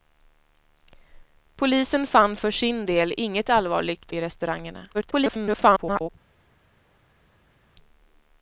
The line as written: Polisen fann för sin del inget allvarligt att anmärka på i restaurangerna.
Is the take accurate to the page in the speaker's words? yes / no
no